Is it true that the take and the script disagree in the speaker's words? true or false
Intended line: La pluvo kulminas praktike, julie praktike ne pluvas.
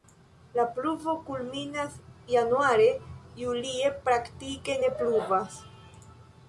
true